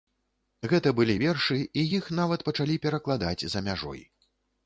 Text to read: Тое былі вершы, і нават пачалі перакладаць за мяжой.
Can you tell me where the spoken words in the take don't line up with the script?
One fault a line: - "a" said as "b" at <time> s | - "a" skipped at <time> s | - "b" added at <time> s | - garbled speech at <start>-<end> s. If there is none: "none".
- "Тое" said as "Гэта" at 0.7 s
- "іх" added at 2.0 s